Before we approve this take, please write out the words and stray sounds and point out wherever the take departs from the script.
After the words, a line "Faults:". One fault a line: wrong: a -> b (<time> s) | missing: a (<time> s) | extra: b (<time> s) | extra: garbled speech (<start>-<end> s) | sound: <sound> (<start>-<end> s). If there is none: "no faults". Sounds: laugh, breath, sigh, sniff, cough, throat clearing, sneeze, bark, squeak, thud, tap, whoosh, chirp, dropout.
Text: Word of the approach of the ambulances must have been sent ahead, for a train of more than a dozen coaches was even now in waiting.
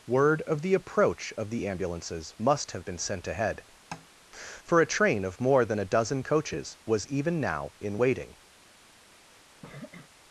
Word of the approach of the ambulances must have been sent ahead, for a train of more than a dozen coaches was even now in waiting.
Faults:
sound: tap (3.9-4.1 s)
sound: sniff (9.6-10.1 s)